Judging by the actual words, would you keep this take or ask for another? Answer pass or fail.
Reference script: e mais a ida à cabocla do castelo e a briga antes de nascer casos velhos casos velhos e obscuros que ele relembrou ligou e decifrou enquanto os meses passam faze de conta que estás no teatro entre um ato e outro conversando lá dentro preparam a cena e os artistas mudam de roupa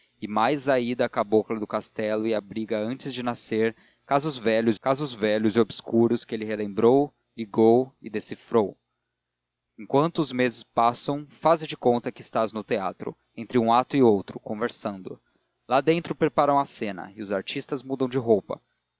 pass